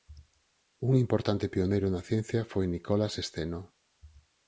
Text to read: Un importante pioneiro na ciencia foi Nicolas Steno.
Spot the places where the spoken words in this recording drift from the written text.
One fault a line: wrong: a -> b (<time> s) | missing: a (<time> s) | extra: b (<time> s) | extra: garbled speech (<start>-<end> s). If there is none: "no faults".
no faults